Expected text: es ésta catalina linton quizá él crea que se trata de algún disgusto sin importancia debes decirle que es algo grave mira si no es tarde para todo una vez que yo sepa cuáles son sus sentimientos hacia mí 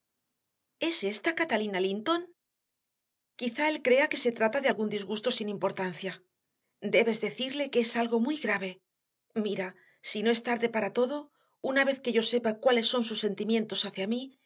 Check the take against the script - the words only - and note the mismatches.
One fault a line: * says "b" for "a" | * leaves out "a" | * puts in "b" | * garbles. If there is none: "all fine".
* puts in "muy"